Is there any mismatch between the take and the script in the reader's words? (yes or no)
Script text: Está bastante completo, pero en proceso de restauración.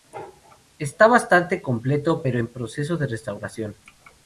no